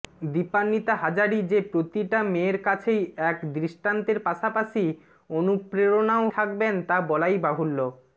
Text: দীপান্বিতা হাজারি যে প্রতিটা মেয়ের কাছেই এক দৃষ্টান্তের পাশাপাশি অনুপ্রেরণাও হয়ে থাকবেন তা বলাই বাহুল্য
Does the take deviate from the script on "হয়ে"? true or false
true